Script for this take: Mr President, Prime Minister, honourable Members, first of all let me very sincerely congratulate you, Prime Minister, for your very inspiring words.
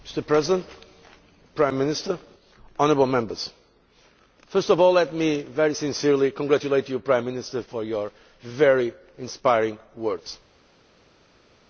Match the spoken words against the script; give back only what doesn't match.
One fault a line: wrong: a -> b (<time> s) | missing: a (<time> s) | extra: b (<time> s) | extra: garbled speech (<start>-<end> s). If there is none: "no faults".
no faults